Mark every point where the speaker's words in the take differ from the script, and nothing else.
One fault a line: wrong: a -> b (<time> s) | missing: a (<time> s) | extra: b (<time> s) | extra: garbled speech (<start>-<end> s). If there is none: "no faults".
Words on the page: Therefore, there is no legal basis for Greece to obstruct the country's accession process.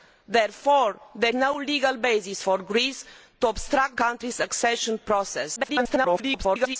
missing: is (1.4 s)
missing: the (4.0 s)
extra: garbled speech (5.6-6.8 s)